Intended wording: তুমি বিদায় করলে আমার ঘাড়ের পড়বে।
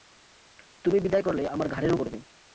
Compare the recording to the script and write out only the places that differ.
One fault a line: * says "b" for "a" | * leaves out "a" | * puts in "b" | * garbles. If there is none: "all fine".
all fine